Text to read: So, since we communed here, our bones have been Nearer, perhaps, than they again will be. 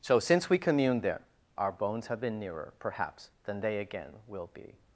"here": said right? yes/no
no